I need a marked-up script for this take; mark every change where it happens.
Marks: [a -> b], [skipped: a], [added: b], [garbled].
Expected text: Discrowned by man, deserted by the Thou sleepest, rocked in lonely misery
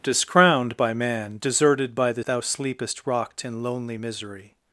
Discrowned by man, deserted by the Thou sleepest, rocked in lonely misery